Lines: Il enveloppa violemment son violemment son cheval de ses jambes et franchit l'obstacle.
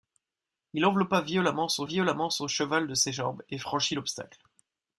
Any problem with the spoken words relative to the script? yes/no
no